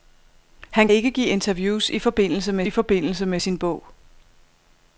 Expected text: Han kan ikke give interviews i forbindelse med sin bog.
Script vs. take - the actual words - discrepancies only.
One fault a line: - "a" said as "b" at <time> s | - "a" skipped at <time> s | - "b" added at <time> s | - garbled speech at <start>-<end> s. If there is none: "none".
- "kan" skipped at 0.9 s
- "i forbindelse med" added at 2.6 s